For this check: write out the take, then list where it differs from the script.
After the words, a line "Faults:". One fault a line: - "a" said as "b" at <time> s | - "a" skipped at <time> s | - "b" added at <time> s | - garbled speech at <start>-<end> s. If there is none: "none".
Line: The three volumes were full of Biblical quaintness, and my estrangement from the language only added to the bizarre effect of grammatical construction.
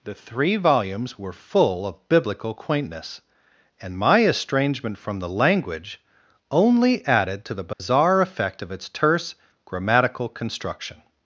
The three volumes were full of Biblical quaintness, and my estrangement from the language only added to the bizarre effect of its terse grammatical construction.
Faults:
- "its terse" added at 8.7 s